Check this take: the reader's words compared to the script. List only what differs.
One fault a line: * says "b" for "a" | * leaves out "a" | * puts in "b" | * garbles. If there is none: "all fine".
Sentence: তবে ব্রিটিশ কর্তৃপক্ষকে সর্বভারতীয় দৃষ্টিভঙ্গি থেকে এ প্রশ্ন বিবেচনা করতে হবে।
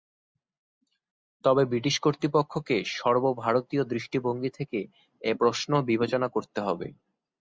all fine